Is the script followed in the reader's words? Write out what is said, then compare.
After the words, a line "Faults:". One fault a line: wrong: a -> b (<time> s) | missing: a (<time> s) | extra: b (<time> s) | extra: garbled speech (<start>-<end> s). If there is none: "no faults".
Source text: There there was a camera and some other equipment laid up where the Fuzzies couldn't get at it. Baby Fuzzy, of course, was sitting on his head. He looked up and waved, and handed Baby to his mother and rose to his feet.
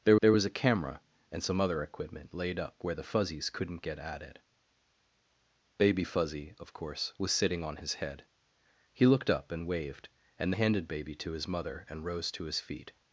There there was a camera and some other equipment laid up where the Fuzzies couldn't get at it. Baby Fuzzy, of course, was sitting on his head. He looked up and waved, and handed Baby to his mother and rose to his feet.
Faults:
no faults